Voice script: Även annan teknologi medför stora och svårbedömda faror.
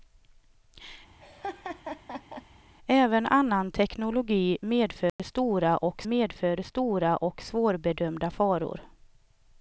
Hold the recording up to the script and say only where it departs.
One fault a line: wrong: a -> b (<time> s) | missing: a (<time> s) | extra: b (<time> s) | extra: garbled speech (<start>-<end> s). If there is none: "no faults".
extra: medför stora och (6.0 s)